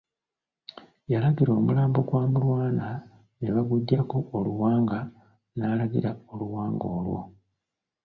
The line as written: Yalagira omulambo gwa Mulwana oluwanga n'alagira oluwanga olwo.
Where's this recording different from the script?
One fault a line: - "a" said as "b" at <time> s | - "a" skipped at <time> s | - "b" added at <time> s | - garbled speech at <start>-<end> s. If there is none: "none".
- "ne baguggyako" added at 3.4 s